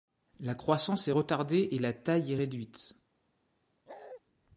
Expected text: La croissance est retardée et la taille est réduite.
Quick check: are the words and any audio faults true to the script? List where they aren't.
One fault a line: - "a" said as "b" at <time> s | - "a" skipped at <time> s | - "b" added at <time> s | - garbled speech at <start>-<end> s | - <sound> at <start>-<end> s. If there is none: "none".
- bark at 3.9-4.2 s